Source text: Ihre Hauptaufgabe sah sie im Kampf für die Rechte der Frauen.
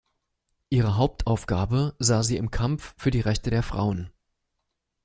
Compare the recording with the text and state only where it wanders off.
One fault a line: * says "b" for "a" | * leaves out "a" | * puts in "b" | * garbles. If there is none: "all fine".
all fine